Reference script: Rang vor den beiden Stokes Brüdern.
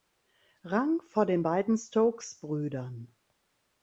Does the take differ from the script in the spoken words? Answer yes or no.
no